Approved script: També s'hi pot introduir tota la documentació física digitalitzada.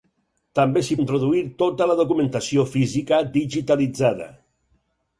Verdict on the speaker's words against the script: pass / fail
fail